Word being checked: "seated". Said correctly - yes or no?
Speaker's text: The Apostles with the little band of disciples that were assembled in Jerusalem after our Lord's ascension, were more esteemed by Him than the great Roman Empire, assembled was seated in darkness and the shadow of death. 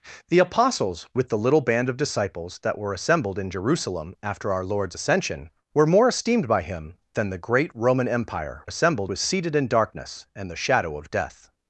yes